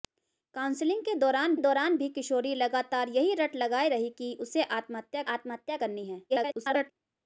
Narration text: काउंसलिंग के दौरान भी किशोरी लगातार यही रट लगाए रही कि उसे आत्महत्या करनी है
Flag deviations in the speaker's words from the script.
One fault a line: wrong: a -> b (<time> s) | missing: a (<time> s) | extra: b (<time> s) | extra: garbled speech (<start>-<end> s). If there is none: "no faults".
extra: दौरान (1.6 s)
extra: आत्महत्या (5.3 s)
extra: garbled speech (6.3-6.9 s)